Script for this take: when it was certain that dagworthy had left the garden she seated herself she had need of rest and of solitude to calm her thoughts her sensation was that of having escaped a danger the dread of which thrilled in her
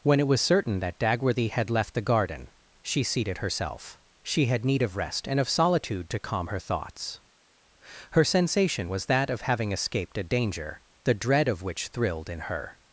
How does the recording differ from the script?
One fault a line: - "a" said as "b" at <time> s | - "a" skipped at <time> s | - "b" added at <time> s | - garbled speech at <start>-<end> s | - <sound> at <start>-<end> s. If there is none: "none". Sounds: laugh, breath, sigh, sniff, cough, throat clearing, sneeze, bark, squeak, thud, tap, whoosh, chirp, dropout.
none